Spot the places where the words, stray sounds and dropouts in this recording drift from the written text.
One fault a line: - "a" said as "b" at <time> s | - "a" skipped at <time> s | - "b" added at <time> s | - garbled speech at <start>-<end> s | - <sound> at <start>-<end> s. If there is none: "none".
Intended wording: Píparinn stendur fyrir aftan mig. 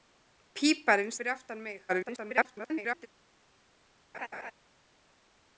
- "stendur" skipped at 1.1 s
- garbled speech at 1.9-3.1 s
- laugh at 4.1-4.5 s